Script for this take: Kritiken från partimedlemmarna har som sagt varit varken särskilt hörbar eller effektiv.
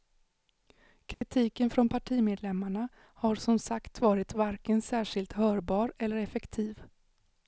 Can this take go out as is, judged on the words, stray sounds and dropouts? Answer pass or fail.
fail